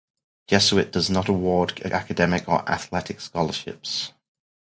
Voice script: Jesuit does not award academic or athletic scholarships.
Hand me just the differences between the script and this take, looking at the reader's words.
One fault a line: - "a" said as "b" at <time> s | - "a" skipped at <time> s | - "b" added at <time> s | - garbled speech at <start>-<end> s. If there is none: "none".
none